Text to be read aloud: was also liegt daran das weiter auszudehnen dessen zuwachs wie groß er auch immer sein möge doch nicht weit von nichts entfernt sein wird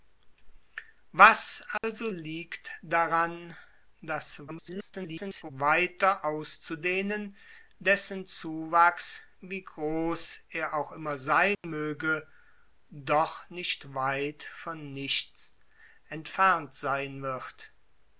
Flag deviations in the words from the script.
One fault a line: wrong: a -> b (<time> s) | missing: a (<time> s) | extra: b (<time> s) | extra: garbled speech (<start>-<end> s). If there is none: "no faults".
extra: garbled speech (4.5-5.5 s)